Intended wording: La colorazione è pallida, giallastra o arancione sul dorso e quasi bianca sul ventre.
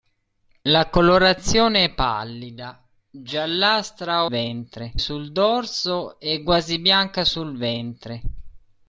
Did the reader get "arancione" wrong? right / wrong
wrong